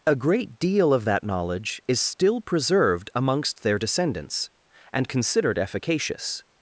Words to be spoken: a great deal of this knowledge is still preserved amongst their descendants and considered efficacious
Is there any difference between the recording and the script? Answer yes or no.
yes